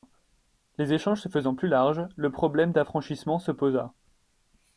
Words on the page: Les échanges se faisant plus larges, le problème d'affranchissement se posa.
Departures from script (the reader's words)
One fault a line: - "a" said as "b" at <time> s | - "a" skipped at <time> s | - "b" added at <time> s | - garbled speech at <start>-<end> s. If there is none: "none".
none